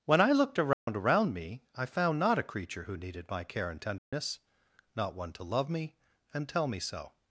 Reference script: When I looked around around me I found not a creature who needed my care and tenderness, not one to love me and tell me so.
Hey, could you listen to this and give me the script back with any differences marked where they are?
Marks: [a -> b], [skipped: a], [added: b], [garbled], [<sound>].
When I looked around [dropout] around me I found not a creature who needed my care and tenderness, [dropout] not one to love me and tell me so.